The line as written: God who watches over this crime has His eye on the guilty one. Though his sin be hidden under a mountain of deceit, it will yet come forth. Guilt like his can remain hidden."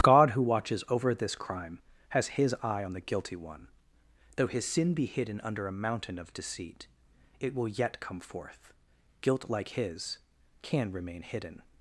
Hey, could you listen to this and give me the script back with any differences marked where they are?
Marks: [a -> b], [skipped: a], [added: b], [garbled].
God who watches over this crime has His eye on the guilty one. Though his sin be hidden under a mountain of deceit, it will yet come forth. Guilt like his can remain hidden."